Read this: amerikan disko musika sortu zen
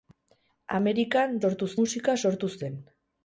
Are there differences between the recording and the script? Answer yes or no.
yes